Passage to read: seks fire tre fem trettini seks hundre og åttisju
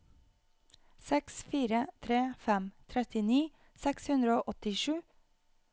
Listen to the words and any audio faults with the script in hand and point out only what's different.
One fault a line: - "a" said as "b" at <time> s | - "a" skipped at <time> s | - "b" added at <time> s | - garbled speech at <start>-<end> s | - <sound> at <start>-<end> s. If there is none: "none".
none